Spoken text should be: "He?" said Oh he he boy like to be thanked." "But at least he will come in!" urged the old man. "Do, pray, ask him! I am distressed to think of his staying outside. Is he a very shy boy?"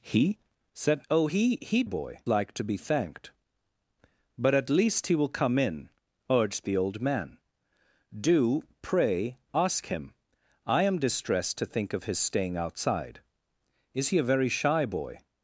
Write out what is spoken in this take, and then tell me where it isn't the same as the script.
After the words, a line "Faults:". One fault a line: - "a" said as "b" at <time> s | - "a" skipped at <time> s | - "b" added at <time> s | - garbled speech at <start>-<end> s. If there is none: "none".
"He?" said Oh he he boy like to be thanked." "But at least he will come in!" urged the old man. "Do, pray, ask him! I am distressed to think of his staying outside. Is he a very shy boy?"
Faults:
none